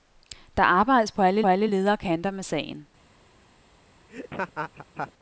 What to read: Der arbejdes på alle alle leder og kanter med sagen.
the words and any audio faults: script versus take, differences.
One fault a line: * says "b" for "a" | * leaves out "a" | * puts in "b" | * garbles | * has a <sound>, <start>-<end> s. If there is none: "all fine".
* has a laugh, 4.1-5.1 s